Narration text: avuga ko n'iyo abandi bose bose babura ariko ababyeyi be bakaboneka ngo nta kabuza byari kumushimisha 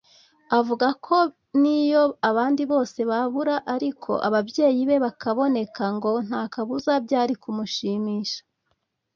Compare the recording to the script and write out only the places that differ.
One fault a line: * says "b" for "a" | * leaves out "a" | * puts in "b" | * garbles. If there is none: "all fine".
* leaves out "bose"